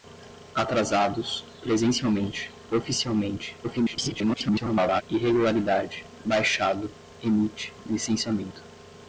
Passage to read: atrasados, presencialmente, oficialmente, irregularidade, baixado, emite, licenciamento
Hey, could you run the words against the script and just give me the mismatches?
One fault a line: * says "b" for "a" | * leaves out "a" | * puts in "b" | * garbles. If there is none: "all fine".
* garbles